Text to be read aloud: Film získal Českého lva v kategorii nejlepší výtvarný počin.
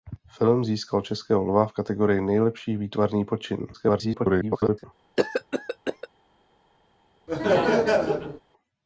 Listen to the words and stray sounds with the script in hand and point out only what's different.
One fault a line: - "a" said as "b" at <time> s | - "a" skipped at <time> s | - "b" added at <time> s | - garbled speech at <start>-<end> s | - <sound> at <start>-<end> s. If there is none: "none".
- garbled speech at 3.7-4.8 s
- cough at 5.2-6.1 s
- laugh at 7.3-8.4 s